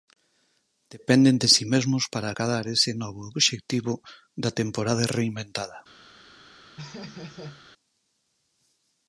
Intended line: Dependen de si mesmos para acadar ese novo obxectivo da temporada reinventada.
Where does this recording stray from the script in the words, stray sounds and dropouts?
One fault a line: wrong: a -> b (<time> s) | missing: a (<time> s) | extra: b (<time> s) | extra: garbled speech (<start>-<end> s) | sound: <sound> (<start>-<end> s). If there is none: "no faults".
sound: laugh (6.8-7.6 s)